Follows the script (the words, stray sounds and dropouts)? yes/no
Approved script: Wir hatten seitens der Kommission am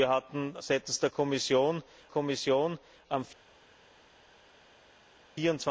no